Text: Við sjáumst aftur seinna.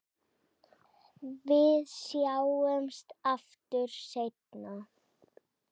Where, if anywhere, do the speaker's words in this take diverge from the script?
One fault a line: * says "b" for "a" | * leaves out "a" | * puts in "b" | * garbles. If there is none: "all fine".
all fine